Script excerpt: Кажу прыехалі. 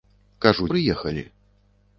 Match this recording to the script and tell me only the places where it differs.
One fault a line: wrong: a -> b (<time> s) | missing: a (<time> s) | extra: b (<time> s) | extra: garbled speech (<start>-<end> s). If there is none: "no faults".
no faults